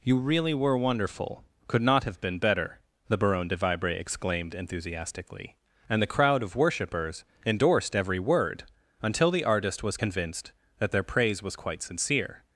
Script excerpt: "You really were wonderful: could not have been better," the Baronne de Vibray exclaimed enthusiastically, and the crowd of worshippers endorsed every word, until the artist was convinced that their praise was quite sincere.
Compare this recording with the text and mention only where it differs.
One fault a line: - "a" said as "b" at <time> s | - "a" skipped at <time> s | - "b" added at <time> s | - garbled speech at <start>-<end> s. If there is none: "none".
none